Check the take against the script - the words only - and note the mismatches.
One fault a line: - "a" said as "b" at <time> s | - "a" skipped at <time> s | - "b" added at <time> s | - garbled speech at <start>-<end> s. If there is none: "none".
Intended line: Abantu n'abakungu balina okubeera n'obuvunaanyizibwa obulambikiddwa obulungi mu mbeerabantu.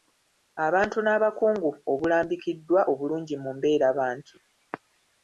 - "balina okubeera n'obuvunaanyizibwa" skipped at 1.7 s